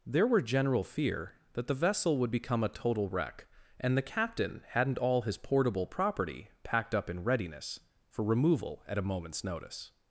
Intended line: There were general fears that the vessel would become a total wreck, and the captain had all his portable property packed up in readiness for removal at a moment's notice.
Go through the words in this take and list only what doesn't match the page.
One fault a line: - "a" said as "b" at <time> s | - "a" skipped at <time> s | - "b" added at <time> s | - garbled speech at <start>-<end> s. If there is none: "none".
- "fears" said as "fear" at 0.8 s
- "had" said as "hadn't" at 4.7 s